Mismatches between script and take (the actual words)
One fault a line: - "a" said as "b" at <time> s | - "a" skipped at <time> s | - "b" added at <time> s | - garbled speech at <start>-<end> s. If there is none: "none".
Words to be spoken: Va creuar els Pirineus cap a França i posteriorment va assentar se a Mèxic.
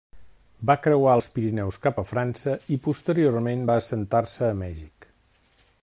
none